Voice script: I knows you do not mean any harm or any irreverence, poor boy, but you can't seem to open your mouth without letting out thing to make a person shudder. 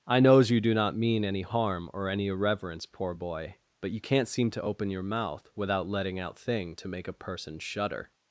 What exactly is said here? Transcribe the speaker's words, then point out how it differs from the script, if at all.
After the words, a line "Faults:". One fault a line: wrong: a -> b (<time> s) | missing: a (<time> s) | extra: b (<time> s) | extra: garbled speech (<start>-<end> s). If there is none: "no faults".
I knows you do not mean any harm or any irreverence, poor boy, but you can't seem to open your mouth without letting out thing to make a person shudder.
Faults:
no faults